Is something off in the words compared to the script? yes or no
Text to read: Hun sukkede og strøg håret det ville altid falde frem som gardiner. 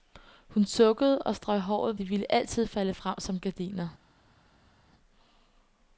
no